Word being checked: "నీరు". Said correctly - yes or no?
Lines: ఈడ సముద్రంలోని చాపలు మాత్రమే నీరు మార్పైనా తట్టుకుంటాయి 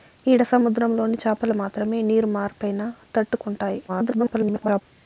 yes